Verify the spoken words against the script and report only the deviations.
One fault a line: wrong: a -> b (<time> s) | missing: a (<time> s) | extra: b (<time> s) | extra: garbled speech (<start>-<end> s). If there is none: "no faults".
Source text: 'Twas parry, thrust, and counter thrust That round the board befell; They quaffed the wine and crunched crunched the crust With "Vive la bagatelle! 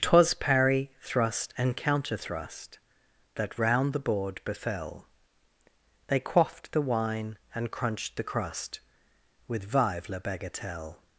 missing: crunched (8.2 s)